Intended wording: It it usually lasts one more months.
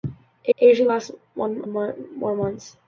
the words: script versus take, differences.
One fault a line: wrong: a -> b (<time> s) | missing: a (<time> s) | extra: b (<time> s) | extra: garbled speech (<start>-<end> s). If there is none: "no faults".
no faults